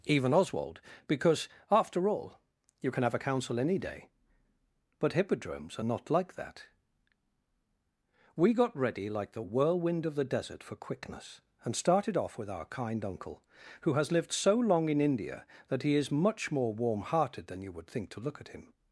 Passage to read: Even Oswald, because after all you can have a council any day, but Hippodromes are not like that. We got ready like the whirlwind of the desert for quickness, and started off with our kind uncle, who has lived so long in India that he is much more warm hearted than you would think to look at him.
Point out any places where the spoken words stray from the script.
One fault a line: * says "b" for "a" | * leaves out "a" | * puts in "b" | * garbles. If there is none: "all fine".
all fine